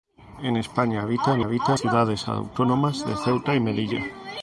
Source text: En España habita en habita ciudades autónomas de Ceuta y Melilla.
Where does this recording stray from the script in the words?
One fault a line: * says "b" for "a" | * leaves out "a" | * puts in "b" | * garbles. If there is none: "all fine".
all fine